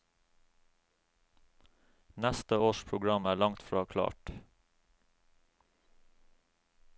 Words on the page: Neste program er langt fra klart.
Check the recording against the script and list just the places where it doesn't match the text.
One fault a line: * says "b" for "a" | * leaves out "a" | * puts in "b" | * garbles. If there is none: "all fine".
* puts in "års"